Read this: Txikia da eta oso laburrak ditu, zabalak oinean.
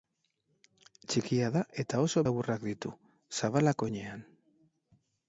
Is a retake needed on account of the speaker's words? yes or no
no